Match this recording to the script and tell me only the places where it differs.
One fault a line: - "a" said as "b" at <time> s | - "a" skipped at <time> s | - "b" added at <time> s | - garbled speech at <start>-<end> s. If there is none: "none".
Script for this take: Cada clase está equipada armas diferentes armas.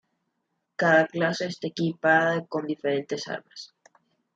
- "armas" said as "con" at 2.5 s